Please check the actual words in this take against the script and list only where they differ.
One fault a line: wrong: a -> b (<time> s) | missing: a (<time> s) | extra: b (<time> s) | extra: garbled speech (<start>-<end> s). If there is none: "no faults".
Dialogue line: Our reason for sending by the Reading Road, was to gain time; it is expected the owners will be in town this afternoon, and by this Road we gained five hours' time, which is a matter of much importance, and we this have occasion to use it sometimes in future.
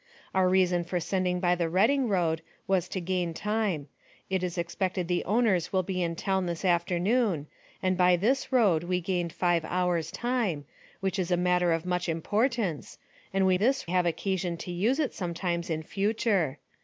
no faults